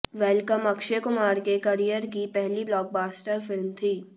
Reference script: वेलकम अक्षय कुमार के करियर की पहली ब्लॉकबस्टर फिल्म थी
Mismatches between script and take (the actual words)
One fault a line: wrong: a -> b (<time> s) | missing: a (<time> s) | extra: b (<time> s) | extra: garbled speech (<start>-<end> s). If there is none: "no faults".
no faults